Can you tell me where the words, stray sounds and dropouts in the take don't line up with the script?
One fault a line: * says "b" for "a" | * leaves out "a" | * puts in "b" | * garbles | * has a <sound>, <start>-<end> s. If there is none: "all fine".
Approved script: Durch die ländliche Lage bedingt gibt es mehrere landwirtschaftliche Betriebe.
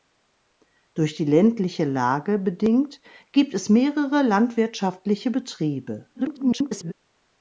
* garbles